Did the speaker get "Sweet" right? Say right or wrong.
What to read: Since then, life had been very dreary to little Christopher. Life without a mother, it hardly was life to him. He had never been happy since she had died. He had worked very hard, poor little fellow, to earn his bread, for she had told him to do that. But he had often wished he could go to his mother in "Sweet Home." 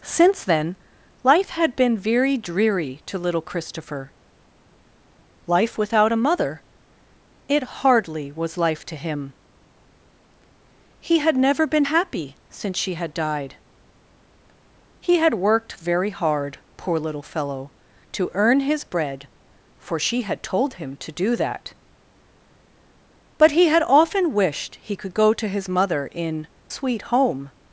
right